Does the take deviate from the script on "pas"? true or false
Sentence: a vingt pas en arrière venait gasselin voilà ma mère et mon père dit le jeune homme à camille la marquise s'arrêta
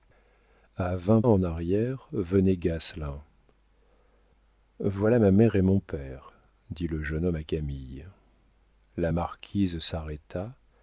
true